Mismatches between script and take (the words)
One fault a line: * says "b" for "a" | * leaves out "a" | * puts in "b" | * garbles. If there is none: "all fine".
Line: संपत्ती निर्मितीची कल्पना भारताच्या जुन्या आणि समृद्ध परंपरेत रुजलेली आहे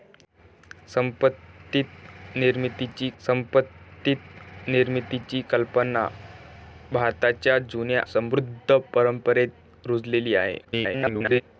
* puts in "संपत्ती निर्मितीची"
* leaves out "आणि"
* garbles